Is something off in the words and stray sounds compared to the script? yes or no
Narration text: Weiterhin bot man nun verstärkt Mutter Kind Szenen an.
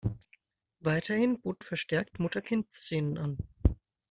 yes